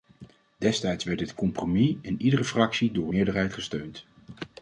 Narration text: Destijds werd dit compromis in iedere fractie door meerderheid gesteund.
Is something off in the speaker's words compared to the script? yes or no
no